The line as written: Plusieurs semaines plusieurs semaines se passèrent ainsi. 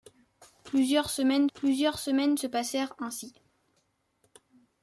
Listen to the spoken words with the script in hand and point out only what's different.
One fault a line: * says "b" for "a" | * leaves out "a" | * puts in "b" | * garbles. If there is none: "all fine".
all fine